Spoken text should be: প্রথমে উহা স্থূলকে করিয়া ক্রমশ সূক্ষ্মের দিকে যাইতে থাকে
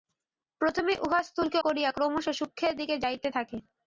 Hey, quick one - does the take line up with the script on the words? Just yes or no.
yes